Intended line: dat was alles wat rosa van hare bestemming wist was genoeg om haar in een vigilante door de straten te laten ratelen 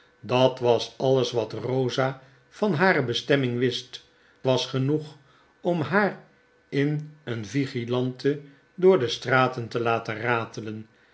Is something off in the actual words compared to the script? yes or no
no